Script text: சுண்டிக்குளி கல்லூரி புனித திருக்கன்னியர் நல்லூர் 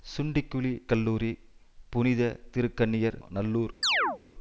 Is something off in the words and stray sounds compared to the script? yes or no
yes